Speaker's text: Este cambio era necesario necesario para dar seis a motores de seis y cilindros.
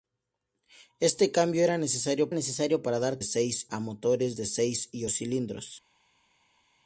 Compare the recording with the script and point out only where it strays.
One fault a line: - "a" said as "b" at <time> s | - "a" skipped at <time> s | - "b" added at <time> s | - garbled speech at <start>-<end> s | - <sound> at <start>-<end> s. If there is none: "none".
none